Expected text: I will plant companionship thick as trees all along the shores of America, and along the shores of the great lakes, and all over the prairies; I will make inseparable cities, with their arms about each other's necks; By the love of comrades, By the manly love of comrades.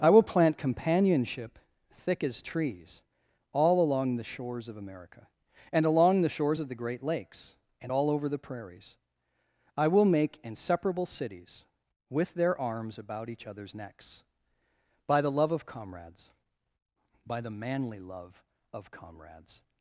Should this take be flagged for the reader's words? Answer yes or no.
no